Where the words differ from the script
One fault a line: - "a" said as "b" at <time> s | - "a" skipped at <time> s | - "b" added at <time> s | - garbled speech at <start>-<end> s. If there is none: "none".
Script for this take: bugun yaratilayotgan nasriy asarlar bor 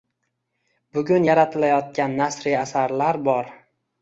none